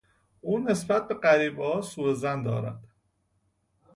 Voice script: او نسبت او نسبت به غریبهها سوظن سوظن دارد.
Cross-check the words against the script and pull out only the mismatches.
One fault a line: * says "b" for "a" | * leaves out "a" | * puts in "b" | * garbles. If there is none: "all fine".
* leaves out "او نسبت"
* leaves out "سوظن"